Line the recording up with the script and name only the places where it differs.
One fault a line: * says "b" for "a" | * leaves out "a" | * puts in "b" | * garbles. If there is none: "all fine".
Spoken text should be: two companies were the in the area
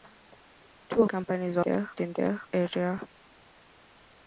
all fine